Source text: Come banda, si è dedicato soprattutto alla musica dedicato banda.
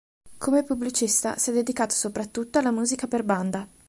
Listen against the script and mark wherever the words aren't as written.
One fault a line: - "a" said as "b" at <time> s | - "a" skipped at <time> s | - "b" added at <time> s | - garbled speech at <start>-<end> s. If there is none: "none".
- "banda" said as "pubblicista" at 0.6 s
- "dedicato" said as "per" at 3.0 s